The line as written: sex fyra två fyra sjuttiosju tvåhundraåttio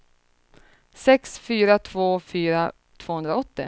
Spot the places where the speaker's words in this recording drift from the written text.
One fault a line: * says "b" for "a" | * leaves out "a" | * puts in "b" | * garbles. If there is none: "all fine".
* leaves out "sjuttiosju"